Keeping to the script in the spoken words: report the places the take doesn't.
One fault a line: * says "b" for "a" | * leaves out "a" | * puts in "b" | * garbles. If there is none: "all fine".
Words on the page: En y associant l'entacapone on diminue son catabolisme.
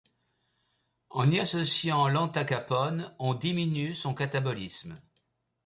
all fine